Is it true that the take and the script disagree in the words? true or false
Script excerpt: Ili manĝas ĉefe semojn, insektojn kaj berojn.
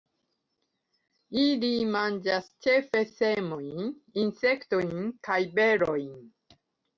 false